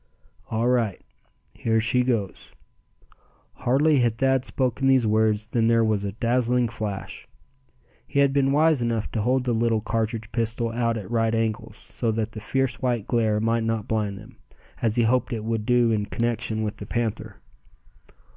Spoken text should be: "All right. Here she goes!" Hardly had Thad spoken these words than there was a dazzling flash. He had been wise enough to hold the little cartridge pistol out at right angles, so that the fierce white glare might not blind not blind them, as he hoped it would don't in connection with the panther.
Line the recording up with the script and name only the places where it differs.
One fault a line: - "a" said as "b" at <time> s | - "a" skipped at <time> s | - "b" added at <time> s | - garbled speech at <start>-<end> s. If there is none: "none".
- "not blind" skipped at 14.2 s
- "don't" said as "do" at 15.7 s